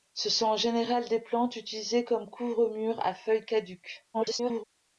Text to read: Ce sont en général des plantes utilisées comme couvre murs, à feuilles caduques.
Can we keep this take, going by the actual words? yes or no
no